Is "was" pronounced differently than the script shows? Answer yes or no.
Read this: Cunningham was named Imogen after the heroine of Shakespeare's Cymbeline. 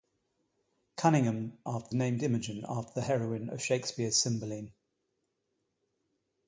yes